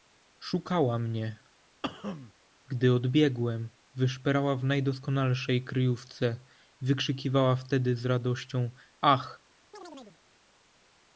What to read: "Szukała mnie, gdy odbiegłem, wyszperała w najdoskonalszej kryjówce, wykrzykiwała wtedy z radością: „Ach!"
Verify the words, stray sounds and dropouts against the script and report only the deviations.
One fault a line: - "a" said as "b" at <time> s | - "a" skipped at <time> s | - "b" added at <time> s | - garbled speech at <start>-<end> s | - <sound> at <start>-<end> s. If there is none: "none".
- cough at 1.8-2.3 s
- chirp at 9.7-10.2 s